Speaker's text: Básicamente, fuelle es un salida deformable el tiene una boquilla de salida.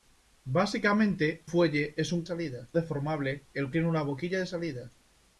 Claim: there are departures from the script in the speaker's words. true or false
false